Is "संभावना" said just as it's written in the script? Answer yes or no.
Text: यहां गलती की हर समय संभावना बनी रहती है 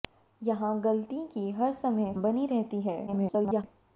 no